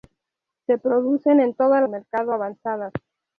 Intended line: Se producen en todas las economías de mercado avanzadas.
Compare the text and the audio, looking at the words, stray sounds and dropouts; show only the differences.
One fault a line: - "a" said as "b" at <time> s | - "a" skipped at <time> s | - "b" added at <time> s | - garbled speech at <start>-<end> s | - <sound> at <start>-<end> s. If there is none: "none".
- "las economías de" skipped at 1.8 s